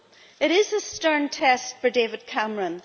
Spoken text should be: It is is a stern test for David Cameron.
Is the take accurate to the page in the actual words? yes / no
no